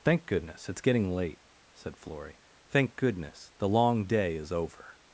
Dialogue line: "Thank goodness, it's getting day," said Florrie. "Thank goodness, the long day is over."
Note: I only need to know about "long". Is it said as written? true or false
true